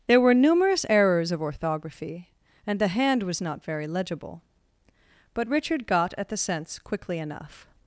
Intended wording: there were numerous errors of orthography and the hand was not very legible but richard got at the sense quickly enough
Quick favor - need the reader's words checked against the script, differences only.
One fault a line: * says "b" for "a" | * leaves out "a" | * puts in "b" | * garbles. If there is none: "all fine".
all fine